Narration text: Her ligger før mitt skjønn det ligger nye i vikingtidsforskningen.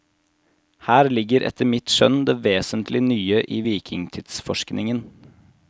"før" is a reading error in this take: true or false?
true